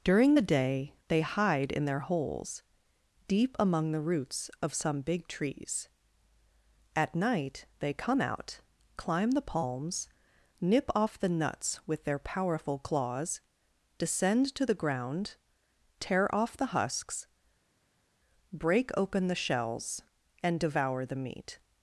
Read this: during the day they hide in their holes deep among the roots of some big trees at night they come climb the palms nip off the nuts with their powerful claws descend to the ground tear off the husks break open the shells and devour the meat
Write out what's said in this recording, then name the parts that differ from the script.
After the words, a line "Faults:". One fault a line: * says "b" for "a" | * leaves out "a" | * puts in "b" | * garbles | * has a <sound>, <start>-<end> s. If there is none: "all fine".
during the day they hide in their holes deep among the roots of some big trees at night they come out climb the palms nip off the nuts with their powerful claws descend to the ground tear off the husks break open the shells and devour the meat
Faults:
* puts in "out"